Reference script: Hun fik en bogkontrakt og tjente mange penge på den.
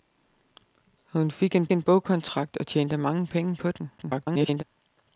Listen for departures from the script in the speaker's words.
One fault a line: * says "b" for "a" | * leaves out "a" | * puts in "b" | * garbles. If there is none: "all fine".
* puts in "en"
* garbles